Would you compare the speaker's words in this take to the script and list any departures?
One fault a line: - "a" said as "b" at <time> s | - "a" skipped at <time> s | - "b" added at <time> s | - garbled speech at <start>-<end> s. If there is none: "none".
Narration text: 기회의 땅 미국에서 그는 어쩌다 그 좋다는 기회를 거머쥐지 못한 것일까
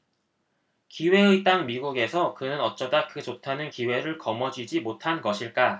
none